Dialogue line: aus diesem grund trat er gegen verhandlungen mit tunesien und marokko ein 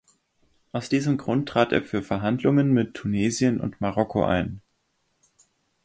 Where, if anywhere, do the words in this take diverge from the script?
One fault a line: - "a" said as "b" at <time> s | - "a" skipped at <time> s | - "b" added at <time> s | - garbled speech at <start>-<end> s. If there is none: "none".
- "gegen" said as "für" at 1.8 s